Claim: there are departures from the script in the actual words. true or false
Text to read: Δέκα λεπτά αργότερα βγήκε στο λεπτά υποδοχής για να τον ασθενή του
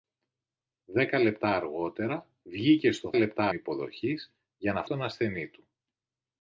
false